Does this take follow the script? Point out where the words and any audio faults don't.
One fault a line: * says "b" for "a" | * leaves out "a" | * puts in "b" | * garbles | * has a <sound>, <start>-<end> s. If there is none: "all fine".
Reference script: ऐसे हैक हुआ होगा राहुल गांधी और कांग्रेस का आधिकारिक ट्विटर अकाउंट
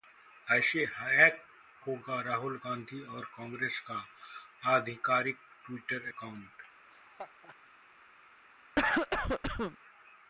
* leaves out "हुआ"
* has a laugh, 6.9-7.6 s
* has a cough, 8.8-9.8 s